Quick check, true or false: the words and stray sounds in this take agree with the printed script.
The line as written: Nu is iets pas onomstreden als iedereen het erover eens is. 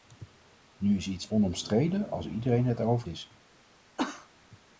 false